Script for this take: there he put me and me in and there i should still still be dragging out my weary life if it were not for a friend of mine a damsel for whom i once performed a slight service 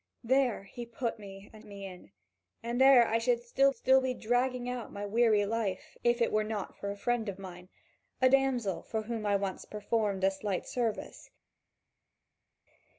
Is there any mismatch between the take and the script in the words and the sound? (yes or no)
no